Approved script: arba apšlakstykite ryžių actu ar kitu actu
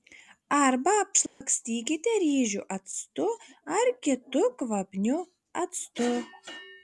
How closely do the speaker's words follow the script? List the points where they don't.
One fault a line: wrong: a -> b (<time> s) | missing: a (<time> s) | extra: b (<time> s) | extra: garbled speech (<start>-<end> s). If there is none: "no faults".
extra: kvapniu (4.6 s)